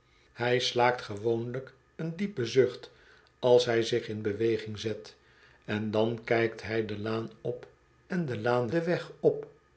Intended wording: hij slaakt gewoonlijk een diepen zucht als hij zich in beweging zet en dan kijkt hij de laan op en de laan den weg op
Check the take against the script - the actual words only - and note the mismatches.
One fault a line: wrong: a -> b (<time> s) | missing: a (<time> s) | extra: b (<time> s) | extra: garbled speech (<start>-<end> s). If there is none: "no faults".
no faults